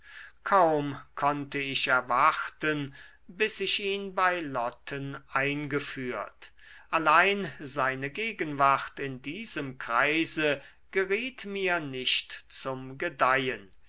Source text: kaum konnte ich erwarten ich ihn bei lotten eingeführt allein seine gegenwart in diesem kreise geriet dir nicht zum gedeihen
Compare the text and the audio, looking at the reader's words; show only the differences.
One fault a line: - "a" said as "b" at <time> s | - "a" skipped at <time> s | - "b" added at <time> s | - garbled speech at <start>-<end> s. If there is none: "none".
- "bis" added at 3.3 s
- "dir" said as "mir" at 11.4 s